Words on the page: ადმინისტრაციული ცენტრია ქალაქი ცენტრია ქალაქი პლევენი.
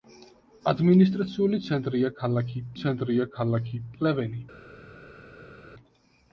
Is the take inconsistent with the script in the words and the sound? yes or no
no